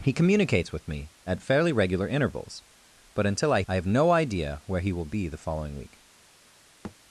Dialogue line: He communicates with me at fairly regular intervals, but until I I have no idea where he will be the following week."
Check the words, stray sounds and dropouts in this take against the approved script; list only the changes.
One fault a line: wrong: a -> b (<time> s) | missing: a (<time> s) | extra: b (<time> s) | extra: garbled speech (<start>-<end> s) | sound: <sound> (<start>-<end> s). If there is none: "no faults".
sound: thud (6.8-7.0 s)